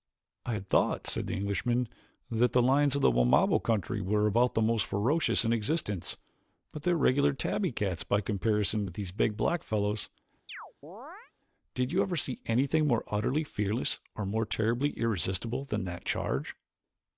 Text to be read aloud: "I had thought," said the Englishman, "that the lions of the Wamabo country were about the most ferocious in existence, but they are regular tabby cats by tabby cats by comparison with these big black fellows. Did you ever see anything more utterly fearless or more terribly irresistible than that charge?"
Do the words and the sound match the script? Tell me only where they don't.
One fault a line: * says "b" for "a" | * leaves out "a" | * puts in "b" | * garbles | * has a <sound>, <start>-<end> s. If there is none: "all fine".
* leaves out "tabby cats by"
* has a chirp, 10.5-11.3 s